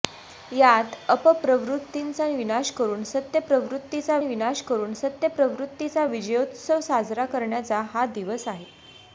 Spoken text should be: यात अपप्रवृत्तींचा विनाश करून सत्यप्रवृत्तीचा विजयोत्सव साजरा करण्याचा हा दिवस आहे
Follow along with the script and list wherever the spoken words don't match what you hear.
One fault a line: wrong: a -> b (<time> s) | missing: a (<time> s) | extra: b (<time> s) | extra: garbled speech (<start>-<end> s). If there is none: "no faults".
extra: विनाश करून सत्यप्रवृत्तीचा (4.2 s)